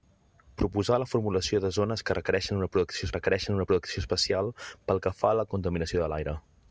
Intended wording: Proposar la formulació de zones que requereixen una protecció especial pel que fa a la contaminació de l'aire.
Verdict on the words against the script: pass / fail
fail